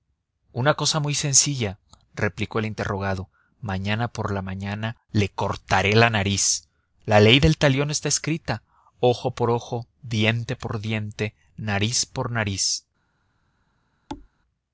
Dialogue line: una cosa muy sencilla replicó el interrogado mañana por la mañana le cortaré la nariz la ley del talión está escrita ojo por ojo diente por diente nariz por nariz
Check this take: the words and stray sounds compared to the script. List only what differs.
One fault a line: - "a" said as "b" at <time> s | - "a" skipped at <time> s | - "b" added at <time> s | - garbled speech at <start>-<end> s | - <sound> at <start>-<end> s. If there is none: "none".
- thud at 14.1-14.3 s